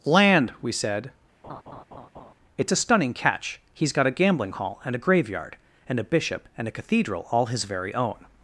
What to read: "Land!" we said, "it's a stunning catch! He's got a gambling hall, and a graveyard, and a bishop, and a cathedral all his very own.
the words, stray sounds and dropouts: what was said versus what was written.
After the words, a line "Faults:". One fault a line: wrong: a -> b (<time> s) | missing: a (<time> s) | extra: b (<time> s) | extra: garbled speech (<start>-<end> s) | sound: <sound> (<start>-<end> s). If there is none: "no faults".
"Land!" we said, "it's a stunning catch! He's got a gambling hall, and a graveyard, and a bishop, and a cathedral all his very own.
Faults:
sound: laugh (1.4-2.3 s)